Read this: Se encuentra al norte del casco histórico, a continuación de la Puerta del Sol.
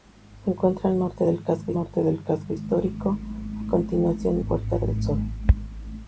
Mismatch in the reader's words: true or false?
true